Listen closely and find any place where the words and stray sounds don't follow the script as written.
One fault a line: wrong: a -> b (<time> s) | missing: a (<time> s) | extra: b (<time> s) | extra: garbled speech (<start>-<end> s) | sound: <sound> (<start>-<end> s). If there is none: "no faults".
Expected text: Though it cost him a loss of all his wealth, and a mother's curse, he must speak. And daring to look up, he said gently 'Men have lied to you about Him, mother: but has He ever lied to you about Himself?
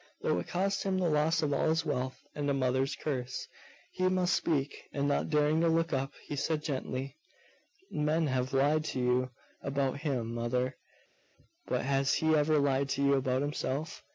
wrong: a -> the (1.0 s)
extra: not (5.1 s)